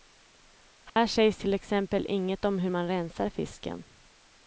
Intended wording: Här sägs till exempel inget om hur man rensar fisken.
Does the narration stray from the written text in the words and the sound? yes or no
yes